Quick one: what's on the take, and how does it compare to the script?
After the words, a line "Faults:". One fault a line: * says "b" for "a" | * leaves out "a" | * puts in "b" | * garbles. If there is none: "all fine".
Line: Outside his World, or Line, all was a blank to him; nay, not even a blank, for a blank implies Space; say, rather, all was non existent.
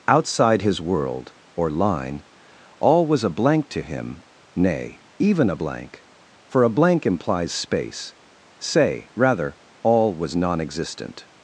Outside his World, or Line, all was a blank to him; nay, even a blank, for a blank implies Space; say, rather, all was non existent.
Faults:
* leaves out "not"